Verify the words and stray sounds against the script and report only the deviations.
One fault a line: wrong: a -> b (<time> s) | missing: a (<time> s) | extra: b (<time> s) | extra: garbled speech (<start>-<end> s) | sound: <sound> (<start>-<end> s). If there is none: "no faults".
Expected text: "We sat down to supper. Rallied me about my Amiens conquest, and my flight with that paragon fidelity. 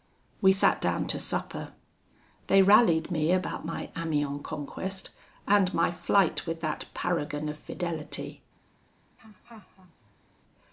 extra: They (2.5 s)
extra: of (7.5 s)
sound: laugh (9.2-10.3 s)